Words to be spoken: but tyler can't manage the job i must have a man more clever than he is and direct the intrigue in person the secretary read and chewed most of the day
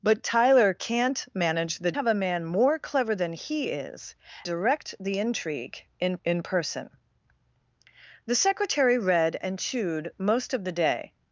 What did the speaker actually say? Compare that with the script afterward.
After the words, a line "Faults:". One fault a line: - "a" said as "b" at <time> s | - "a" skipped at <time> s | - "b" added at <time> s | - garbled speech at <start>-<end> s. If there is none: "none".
but tyler can't manage the have a man more clever than he is direct the intrigue in in person the secretary read and chewed most of the day
Faults:
- "job i must" skipped at 1.9 s
- "and" skipped at 4.1 s
- "in" added at 6.2 s